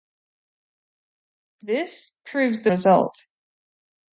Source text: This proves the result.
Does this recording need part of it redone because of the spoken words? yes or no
no